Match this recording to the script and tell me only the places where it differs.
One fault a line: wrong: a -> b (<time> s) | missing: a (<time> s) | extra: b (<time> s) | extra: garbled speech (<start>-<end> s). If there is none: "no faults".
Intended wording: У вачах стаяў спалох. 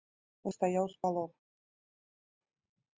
missing: вачах (0.5 s)